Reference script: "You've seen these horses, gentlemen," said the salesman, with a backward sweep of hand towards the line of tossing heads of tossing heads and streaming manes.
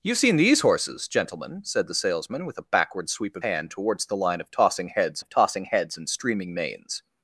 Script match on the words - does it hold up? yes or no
yes